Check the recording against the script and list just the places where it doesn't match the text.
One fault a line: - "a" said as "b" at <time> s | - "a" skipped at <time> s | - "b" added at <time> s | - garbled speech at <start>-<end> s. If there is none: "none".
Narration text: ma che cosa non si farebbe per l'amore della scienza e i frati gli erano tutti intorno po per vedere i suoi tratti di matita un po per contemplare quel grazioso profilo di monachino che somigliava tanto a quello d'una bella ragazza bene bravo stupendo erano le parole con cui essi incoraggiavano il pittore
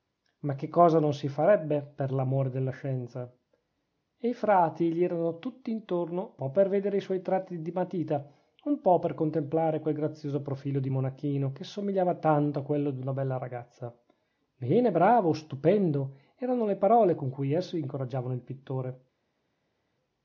none